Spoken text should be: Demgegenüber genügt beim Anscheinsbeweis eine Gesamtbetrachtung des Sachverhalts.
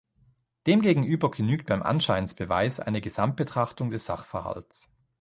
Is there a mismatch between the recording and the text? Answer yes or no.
no